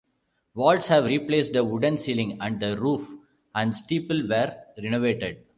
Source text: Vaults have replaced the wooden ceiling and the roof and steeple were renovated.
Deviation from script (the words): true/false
false